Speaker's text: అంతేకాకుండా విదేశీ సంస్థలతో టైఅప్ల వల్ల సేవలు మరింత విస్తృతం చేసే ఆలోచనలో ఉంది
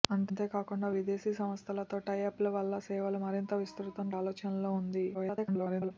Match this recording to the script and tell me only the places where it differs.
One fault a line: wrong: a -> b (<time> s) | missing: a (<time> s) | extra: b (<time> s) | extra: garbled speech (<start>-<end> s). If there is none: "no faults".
missing: చేసే (4.1 s)
extra: garbled speech (5.1-5.9 s)